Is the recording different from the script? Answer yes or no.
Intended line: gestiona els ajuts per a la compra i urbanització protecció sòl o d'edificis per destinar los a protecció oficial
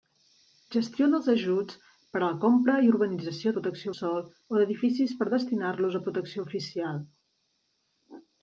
no